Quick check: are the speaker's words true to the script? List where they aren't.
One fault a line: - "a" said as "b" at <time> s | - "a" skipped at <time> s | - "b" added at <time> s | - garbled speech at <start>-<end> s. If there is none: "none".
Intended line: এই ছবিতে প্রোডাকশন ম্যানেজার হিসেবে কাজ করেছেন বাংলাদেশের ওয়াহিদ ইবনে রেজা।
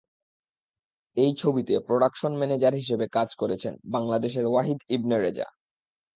none